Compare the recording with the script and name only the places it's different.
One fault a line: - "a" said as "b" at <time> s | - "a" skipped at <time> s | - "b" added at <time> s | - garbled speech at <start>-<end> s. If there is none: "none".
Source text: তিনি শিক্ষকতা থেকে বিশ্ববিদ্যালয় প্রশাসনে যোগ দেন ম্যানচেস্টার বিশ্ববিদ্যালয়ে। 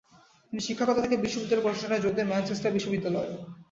none